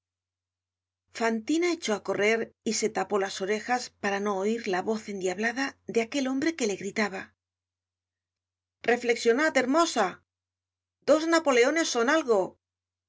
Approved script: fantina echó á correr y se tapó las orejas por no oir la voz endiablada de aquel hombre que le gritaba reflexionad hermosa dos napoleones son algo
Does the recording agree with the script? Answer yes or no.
no